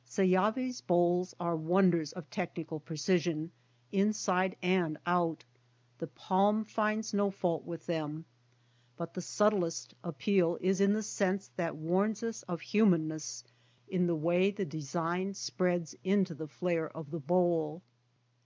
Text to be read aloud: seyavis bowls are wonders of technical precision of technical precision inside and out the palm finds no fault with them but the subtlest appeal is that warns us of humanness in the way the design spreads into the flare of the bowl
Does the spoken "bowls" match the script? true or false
true